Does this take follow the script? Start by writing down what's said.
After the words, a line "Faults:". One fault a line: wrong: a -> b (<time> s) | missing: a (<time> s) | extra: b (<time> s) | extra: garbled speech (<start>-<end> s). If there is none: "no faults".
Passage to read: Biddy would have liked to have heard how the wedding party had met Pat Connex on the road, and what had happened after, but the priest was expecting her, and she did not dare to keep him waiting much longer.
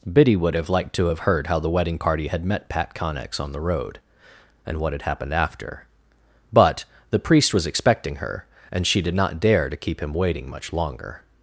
Biddy would have liked to have heard how the wedding party had met Pat Connex on the road, and what had happened after, but the priest was expecting her, and she did not dare to keep him waiting much longer.
Faults:
no faults